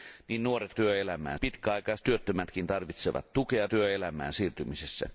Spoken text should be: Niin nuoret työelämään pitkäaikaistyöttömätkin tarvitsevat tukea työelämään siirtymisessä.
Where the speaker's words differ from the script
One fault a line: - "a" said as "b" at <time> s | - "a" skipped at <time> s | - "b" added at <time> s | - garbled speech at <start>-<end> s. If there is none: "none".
none